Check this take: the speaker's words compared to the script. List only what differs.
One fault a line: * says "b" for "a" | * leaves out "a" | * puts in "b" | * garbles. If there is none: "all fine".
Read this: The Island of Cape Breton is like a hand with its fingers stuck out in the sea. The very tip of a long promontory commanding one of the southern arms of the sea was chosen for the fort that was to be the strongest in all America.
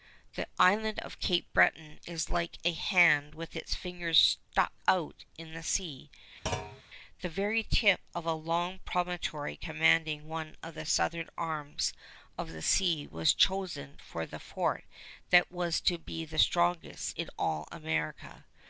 all fine